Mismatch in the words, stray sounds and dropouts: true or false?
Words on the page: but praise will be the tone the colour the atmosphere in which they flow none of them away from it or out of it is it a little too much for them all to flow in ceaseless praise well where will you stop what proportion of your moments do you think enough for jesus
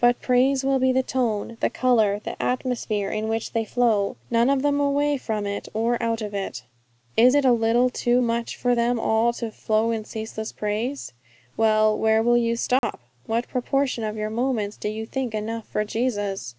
true